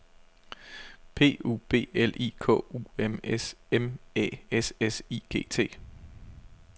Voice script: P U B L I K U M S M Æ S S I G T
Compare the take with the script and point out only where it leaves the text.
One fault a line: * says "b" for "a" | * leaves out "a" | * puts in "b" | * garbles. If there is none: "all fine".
all fine